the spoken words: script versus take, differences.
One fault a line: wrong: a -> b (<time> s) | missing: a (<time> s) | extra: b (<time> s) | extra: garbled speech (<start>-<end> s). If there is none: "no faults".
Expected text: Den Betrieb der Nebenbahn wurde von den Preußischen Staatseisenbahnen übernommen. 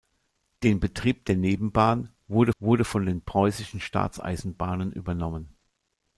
extra: wurde (2.6 s)